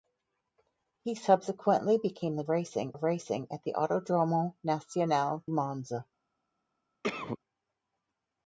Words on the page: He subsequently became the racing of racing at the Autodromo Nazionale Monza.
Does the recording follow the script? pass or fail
pass